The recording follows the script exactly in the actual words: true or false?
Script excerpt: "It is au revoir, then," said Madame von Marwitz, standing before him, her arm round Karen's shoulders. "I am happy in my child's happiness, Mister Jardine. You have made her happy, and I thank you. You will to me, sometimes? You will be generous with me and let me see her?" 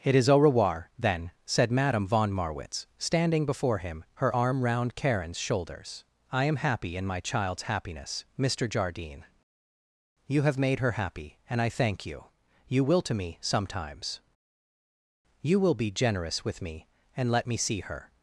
true